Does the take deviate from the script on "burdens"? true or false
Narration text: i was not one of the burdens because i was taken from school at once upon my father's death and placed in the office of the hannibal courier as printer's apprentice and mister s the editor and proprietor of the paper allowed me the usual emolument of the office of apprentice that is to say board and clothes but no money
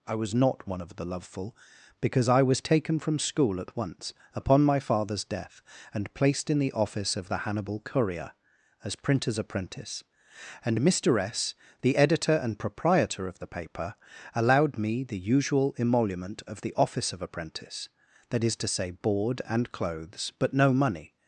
true